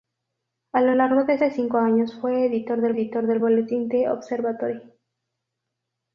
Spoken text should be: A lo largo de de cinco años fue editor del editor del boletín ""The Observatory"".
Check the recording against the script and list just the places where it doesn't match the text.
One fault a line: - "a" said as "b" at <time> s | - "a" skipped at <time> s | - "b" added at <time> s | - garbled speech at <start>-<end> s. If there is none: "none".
none